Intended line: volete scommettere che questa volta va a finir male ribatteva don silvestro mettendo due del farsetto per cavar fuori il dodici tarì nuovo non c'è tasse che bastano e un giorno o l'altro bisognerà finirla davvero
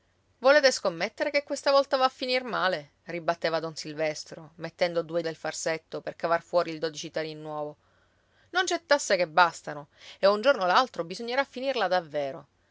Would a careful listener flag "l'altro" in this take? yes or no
no